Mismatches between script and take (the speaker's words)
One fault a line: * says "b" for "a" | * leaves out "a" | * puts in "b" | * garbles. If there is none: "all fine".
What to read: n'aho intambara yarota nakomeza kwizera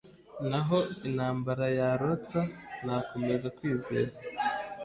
all fine